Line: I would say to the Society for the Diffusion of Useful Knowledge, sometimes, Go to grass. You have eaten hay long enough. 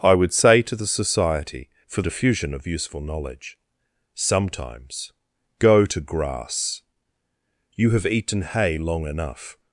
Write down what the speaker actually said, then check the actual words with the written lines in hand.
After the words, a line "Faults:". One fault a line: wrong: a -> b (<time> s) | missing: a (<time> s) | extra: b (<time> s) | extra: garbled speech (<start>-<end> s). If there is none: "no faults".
I would say to the Society for Diffusion of Useful Knowledge, sometimes, Go to grass. You have eaten hay long enough.
Faults:
missing: the (2.0 s)